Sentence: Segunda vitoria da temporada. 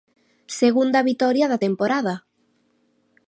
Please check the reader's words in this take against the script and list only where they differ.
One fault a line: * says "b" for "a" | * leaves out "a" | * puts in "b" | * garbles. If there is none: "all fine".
all fine